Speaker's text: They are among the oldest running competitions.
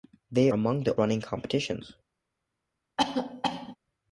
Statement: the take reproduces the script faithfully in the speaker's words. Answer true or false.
false